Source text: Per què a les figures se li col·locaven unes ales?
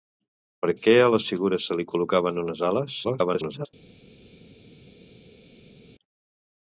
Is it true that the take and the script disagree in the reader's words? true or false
true